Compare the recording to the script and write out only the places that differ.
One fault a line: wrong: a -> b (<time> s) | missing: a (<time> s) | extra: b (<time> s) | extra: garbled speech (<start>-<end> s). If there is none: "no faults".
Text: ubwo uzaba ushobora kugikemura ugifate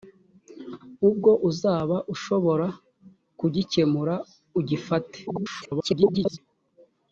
extra: garbled speech (5.3-6.4 s)